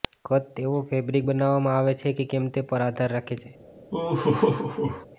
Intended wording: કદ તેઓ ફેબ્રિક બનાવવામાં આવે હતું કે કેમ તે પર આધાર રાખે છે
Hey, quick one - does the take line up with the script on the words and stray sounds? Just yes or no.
no